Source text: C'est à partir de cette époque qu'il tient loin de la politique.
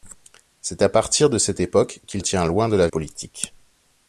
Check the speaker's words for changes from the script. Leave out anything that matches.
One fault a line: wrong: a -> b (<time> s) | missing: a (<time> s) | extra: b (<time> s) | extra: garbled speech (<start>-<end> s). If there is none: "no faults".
no faults